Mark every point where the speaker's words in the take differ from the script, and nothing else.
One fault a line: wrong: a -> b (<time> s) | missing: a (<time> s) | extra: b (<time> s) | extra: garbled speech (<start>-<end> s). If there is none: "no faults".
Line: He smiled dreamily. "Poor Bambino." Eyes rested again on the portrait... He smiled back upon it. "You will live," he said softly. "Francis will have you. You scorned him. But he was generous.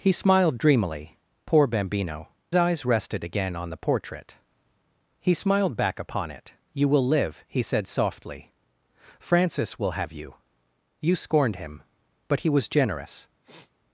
no faults